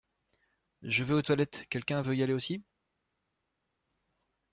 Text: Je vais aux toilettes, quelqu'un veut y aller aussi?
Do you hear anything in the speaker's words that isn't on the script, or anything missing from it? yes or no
no